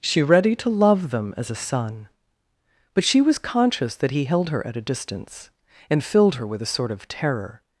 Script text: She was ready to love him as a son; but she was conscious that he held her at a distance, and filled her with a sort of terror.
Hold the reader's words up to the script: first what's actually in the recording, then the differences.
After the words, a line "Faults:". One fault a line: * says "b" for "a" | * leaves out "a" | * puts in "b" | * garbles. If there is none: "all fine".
She ready to love them as a son; but she was conscious that he held her at a distance, and filled her with a sort of terror.
Faults:
* leaves out "was"
* says "them" for "him"